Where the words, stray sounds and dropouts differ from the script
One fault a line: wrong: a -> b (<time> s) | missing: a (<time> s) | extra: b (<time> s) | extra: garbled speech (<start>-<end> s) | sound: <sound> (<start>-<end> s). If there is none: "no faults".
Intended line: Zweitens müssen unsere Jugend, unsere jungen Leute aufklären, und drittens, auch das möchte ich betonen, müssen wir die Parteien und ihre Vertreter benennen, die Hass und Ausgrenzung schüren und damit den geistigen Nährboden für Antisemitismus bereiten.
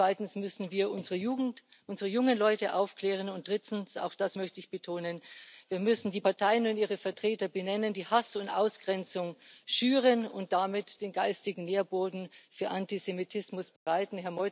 extra: wir (0.7 s)
sound: dropout (13.8-13.9 s)